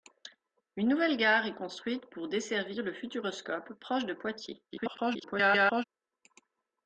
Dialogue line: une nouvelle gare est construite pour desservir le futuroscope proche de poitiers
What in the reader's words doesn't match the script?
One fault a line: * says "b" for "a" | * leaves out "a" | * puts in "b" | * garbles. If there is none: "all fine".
* garbles